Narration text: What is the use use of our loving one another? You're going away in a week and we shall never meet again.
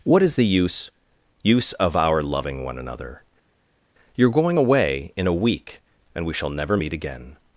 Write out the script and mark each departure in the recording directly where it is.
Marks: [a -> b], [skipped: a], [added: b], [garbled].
What is the use use of our loving one another? You're going away in a week and we shall never meet again.